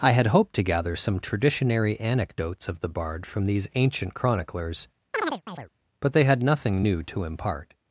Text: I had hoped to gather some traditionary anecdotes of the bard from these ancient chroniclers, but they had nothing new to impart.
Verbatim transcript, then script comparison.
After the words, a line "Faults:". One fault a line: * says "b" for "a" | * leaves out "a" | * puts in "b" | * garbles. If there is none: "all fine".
I had hoped to gather some traditionary anecdotes of the bard from these ancient chroniclers, but they had nothing new to impart.
Faults:
all fine